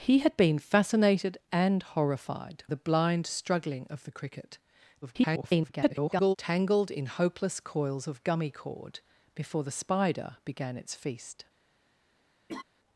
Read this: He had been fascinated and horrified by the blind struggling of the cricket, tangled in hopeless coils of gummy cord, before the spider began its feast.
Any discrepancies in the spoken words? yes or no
yes